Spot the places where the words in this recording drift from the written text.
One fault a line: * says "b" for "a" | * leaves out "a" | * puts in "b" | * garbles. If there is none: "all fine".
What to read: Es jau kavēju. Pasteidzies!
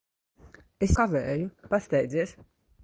* leaves out "jau"